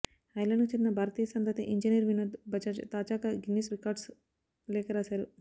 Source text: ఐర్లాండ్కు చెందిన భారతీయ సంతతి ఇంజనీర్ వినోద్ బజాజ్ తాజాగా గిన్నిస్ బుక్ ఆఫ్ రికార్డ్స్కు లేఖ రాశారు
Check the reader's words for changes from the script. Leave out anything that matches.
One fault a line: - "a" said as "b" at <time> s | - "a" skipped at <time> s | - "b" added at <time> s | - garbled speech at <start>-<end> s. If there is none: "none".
- "బుక్ ఆఫ్" skipped at 3.7 s